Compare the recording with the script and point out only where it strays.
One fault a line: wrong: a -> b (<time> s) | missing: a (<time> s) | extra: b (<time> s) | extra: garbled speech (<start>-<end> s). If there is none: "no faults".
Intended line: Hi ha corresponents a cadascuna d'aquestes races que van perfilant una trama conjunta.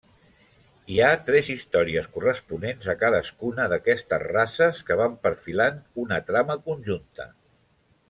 extra: tres històries (1.3 s)